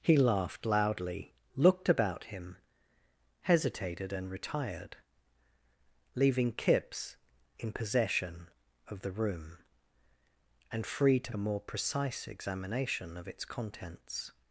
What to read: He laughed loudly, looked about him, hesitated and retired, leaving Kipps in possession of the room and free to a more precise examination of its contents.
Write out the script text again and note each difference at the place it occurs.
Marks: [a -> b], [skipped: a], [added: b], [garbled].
He laughed loudly, looked about him, hesitated and retired, leaving Kipps in possession of the room and free to a more precise examination of its contents.